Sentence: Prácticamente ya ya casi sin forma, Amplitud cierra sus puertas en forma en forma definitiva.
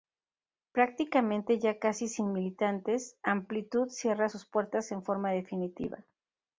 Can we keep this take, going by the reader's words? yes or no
no